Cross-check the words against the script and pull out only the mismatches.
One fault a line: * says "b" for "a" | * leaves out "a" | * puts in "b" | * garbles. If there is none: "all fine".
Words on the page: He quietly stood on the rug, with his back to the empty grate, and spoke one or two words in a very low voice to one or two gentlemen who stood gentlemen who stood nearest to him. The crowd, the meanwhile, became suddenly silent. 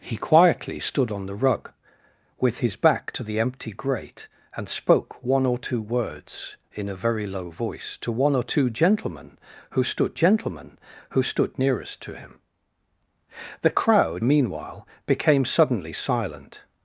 all fine